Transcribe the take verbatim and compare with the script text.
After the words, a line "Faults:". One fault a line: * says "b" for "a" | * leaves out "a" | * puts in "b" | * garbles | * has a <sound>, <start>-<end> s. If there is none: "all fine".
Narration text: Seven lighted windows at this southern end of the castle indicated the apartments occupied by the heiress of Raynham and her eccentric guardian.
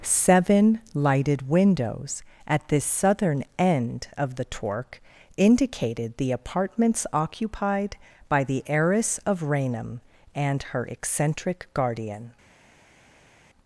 Seven lighted windows at this southern end of the torque indicated the apartments occupied by the heiress of Raynham and her eccentric guardian.
Faults:
* says "torque" for "castle"